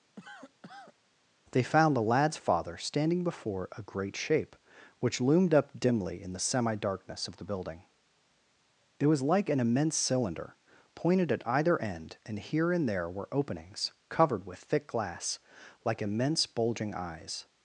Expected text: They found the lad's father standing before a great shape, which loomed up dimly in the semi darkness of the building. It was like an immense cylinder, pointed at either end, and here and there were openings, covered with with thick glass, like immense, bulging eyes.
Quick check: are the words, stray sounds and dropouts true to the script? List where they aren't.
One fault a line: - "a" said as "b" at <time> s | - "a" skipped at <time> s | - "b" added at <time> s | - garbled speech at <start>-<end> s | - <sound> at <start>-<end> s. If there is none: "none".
- cough at 0.2-0.9 s
- "with" skipped at 14.6 s